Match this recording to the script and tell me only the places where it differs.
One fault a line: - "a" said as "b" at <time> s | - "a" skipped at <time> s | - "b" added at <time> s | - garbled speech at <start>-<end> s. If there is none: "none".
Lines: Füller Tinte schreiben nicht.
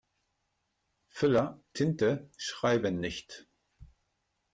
none